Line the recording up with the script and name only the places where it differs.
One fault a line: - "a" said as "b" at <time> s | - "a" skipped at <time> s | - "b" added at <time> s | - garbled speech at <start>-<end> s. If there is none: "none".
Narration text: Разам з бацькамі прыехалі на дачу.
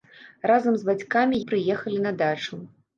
none